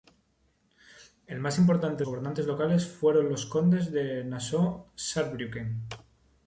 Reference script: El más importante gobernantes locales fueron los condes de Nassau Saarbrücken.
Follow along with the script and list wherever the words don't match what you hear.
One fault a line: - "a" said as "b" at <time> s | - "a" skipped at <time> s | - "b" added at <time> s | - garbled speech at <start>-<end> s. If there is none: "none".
none